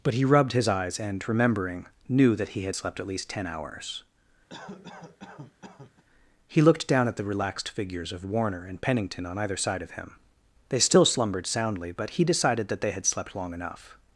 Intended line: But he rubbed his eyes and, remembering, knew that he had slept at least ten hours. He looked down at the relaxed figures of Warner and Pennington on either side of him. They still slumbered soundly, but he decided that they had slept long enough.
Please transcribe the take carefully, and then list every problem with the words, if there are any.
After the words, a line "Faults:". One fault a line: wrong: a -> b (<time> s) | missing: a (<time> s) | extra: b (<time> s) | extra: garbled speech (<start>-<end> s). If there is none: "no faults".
But he rubbed his eyes and, remembering, knew that he had slept at least ten hours. He looked down at the relaxed figures of Warner and Pennington on either side of him. They still slumbered soundly, but he decided that they had slept long enough.
Faults:
no faults